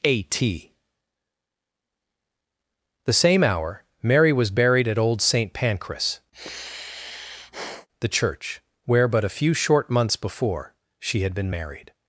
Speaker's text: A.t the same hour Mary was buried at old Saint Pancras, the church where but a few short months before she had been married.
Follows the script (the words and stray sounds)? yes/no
no